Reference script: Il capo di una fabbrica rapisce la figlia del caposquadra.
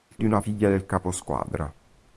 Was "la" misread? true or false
true